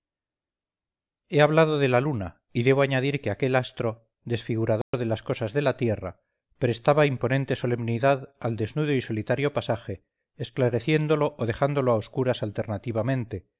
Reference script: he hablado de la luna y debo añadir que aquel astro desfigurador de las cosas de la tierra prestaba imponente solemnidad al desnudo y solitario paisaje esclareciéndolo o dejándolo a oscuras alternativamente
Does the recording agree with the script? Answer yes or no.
yes